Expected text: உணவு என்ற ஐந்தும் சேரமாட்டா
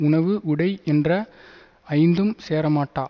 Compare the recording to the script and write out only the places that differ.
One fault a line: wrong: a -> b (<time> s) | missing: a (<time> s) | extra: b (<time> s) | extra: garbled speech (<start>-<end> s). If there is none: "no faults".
extra: உடை (0.4 s)